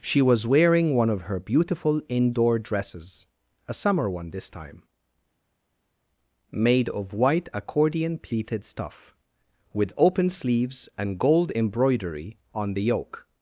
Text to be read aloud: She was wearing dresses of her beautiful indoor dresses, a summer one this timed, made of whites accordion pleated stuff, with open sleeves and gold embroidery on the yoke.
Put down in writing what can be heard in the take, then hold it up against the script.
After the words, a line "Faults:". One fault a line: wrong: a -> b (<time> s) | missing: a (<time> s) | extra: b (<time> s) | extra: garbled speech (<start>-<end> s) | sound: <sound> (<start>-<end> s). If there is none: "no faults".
She was wearing one of her beautiful indoor dresses, a summer one this time, made of white accordion pleated stuff, with open sleeves and gold embroidery on the yoke.
Faults:
wrong: dresses -> one (0.9 s)
wrong: timed -> time (4.5 s)
wrong: whites -> white (7.1 s)